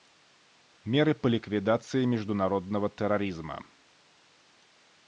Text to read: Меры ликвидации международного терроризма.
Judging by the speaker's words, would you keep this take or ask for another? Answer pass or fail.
fail